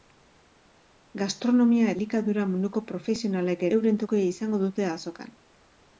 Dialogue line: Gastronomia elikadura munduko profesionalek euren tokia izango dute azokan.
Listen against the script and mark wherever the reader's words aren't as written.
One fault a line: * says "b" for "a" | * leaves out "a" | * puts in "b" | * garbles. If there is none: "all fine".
all fine